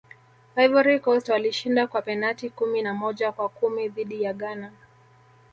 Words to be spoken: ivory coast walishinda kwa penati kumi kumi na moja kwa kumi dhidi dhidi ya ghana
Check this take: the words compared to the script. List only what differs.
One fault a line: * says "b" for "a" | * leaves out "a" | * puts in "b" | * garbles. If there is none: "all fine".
* leaves out "kumi"
* leaves out "dhidi"